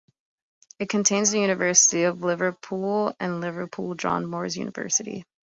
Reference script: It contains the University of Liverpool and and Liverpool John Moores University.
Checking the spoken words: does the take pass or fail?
fail